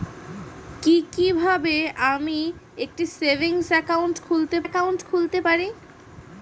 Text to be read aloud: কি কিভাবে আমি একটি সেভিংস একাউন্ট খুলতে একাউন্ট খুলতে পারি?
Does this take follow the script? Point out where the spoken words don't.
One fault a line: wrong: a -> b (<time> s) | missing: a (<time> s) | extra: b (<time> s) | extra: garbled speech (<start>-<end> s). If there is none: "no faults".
no faults